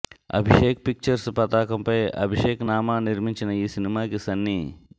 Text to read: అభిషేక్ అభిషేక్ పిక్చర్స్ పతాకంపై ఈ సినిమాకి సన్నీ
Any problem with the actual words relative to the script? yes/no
yes